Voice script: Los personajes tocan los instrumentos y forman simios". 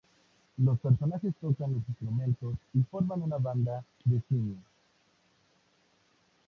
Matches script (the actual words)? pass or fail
fail